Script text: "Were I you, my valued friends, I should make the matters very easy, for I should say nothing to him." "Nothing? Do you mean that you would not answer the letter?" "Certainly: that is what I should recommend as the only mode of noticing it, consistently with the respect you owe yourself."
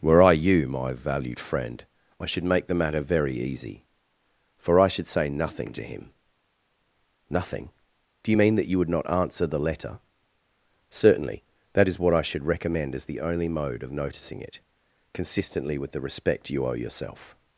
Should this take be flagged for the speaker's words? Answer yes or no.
yes